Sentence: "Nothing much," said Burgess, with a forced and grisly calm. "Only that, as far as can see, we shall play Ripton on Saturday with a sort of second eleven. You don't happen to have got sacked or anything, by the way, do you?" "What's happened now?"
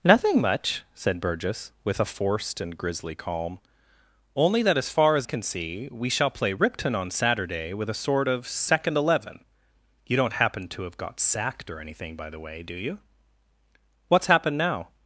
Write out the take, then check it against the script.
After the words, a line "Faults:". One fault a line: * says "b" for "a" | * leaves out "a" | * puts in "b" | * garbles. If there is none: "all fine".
"Nothing much," said Burgess, with a forced and grisly calm. "Only that, as far as can see, we shall play Ripton on Saturday with a sort of second eleven. You don't happen to have got sacked or anything, by the way, do you?" "What's happened now?"
Faults:
all fine